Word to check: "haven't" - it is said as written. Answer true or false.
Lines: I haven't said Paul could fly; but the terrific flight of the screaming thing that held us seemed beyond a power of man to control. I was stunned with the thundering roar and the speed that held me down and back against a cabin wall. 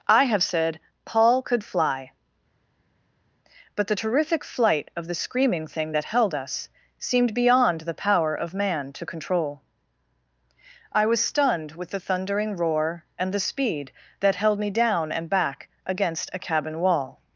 false